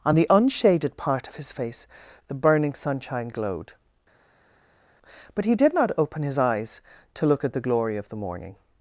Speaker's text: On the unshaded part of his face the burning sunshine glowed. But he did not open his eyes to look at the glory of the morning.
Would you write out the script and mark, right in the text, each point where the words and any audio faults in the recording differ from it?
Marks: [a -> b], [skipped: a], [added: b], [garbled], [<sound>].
On the unshaded part of his face the burning sunshine glowed. But he did not open his eyes to look at the glory of the morning.